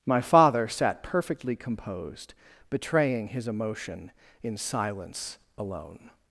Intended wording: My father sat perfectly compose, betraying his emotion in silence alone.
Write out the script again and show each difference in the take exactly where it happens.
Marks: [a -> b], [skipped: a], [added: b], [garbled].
My father sat perfectly [compose, -> composed] betraying his emotion in silence alone.